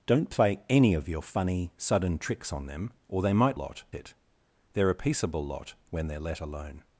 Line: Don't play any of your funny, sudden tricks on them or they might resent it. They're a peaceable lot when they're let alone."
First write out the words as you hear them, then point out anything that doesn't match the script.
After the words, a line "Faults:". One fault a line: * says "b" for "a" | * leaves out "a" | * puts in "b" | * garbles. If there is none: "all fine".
Don't play any of your funny, sudden tricks on them or they might lot it. They're a peaceable lot when they're let alone."
Faults:
* says "lot" for "resent"